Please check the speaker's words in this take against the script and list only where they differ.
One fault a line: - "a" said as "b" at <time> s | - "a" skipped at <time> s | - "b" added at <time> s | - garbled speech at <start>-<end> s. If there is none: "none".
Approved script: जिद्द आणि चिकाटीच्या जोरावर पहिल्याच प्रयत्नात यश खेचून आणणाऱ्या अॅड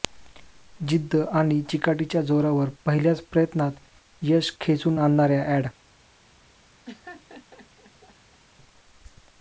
none